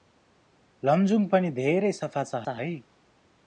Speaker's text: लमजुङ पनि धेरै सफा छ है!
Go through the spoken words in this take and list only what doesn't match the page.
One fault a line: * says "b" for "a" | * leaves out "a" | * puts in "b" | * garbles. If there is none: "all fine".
* puts in "छ"